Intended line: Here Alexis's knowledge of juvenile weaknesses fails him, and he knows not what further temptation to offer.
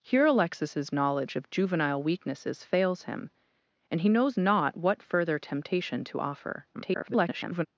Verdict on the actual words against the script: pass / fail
fail